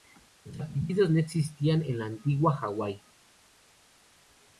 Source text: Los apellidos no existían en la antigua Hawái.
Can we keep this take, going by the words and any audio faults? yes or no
yes